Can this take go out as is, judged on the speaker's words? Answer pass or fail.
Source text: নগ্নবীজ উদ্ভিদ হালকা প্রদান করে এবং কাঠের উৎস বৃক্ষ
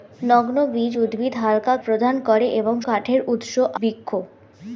pass